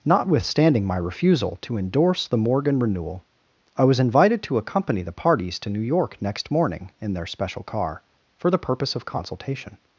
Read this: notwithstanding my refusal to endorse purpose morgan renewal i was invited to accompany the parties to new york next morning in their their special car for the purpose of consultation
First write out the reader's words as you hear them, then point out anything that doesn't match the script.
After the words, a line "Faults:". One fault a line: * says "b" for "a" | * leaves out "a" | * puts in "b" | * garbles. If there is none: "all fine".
notwithstanding my refusal to endorse the morgan renewal i was invited to accompany the parties to new york next morning in their special car for the purpose of consultation
Faults:
* says "the" for "purpose"
* leaves out "their"